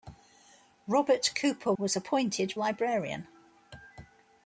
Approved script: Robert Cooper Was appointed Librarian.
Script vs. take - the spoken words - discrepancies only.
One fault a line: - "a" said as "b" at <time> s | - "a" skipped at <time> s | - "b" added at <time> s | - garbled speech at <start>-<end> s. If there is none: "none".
none